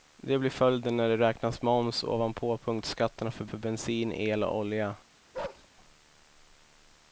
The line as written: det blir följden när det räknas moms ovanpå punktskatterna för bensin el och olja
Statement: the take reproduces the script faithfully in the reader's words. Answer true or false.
false